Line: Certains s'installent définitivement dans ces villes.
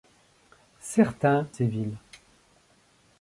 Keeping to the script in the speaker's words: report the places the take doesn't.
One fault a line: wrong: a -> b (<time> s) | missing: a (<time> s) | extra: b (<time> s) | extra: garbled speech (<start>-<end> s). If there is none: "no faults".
missing: s'installent définitivement dans (1.5 s)